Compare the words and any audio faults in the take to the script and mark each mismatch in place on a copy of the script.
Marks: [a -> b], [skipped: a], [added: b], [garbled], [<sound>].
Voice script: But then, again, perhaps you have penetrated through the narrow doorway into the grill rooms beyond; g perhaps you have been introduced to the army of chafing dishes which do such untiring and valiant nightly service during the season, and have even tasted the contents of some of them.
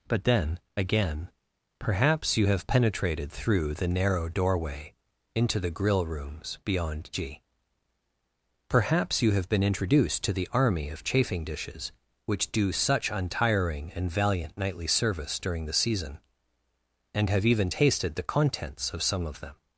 But then, again, perhaps you have penetrated through the narrow doorway into the grill rooms beyond; g perhaps you have been introduced to the army of chafing dishes which do such untiring and valiant nightly service during the season, and have even tasted the contents of some of them.